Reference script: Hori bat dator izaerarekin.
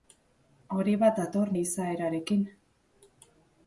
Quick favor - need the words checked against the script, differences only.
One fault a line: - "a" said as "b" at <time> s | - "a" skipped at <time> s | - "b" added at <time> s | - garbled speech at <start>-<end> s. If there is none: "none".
none